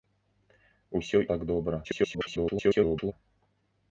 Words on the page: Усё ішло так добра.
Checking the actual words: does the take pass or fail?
fail